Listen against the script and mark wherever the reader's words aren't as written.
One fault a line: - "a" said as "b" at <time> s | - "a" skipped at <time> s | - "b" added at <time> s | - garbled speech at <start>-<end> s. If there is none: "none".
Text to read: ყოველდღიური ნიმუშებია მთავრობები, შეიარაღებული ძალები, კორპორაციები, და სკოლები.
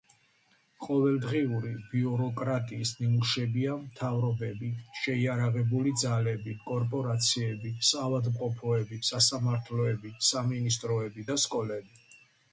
- "ბიუროკრატიის" added at 1.9 s
- "საავადმყოფოები სასამართლოები სამინისტროები" added at 7.9 s